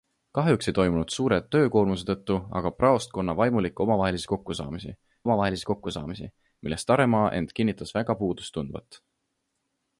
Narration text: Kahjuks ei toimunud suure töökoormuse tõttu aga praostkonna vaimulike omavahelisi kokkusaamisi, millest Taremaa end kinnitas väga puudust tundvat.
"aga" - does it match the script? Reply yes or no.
yes